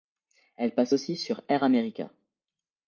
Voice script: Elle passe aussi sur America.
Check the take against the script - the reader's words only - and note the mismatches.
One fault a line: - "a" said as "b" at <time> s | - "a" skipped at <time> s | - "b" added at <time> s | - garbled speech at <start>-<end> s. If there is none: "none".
- "Air" added at 1.5 s